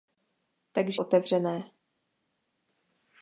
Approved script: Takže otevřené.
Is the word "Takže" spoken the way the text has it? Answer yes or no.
yes